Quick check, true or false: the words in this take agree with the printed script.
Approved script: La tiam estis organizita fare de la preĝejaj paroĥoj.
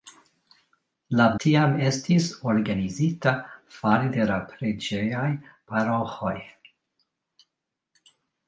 true